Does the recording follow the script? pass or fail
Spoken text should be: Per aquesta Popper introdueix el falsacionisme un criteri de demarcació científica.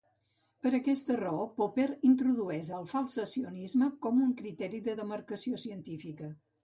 fail